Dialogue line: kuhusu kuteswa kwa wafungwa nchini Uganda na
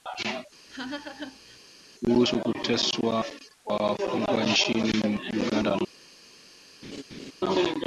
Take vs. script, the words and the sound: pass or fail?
fail